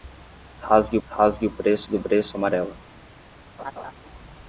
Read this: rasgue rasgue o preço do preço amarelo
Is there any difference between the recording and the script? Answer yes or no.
no